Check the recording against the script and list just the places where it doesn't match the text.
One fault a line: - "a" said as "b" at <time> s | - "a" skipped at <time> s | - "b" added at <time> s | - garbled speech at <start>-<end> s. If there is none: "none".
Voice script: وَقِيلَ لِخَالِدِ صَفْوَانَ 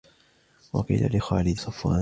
none